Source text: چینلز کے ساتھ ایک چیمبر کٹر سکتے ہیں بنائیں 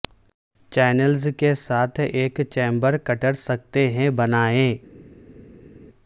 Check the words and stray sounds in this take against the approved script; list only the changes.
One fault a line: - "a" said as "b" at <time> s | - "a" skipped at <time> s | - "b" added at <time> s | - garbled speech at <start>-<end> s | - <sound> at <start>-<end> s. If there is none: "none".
none